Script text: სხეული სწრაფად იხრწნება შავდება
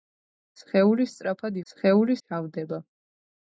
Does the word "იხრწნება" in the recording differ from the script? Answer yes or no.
yes